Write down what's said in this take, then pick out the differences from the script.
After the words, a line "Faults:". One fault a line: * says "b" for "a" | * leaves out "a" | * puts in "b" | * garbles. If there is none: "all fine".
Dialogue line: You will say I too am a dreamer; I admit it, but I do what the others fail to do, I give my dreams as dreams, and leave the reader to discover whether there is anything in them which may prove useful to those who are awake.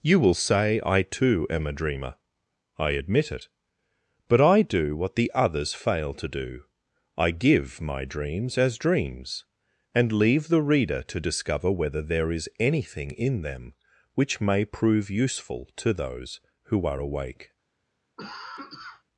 You will say I too am a dreamer; I admit it, but I do what the others fail to do, I give my dreams as dreams, and leave the reader to discover whether there is anything in them which may prove useful to those who are awake.
Faults:
all fine